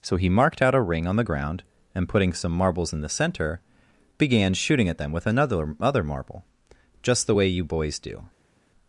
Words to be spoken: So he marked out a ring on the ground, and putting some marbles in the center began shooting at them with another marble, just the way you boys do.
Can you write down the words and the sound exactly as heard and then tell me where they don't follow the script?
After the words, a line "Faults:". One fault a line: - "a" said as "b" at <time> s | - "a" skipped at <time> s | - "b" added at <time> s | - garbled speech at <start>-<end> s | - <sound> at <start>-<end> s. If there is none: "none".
So he marked out a ring on the ground, and putting some marbles in the center began shooting at them with another other marble, just the way you boys do.
Faults:
- "other" added at 5.8 s